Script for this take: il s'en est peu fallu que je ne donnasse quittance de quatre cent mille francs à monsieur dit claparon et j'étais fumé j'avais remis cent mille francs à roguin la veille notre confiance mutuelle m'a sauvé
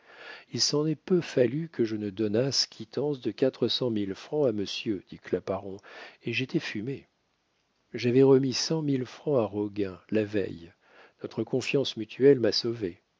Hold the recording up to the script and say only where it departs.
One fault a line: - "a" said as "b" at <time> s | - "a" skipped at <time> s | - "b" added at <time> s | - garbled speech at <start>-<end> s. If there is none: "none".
none